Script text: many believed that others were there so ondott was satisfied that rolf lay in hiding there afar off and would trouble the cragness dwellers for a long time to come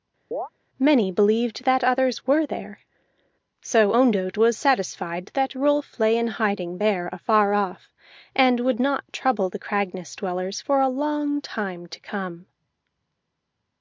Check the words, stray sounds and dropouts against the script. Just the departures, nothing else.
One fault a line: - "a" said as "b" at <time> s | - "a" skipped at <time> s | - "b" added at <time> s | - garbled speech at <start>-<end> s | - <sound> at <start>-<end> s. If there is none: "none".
- chirp at 0.3-0.5 s
- "not" added at 8.8 s